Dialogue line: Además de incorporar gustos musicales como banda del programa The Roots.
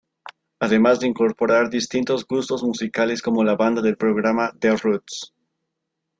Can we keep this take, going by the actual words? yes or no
no